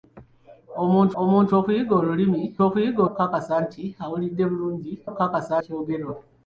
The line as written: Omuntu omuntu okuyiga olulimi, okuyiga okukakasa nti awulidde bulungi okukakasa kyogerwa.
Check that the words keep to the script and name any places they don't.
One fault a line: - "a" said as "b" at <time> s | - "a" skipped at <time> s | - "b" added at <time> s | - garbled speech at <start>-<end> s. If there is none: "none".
none